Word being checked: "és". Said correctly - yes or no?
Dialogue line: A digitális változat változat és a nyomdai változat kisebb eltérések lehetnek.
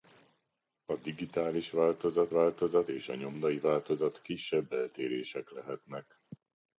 yes